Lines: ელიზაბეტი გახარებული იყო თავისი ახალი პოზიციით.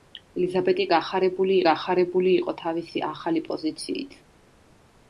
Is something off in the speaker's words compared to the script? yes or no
yes